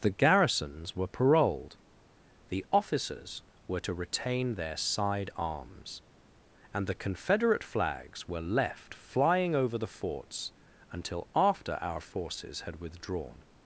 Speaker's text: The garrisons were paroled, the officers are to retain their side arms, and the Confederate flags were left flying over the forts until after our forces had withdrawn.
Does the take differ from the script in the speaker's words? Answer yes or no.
yes